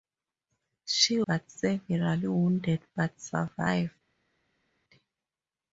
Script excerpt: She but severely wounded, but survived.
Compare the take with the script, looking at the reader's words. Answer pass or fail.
pass